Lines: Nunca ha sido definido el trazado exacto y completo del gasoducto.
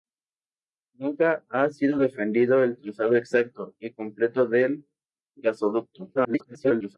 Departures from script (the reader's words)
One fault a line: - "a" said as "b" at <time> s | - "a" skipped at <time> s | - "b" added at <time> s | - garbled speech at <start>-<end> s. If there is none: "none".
- garbled speech at 6.1-7.0 s